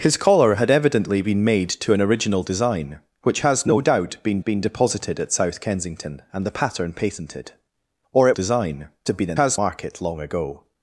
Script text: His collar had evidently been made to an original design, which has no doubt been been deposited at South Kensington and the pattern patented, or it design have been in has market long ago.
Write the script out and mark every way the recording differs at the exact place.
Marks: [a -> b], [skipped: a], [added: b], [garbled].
His collar had evidently been made to an original design, which has no doubt been been deposited at South Kensington and the pattern patented, or it design have been in has market long ago.